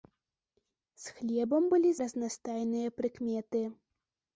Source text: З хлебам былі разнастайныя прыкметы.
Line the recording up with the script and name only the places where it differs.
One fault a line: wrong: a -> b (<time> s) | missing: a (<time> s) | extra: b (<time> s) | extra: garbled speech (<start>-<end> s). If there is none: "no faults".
no faults